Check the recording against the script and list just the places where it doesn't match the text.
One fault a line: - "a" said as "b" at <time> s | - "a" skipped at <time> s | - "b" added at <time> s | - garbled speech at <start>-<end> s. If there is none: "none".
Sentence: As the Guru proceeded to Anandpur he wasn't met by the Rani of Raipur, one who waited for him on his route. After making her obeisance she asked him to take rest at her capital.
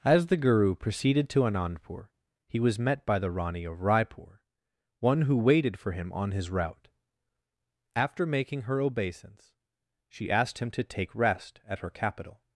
- "wasn't" said as "was" at 2.6 s